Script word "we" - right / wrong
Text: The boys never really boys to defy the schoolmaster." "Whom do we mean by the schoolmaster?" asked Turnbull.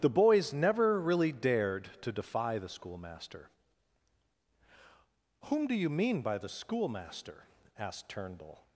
wrong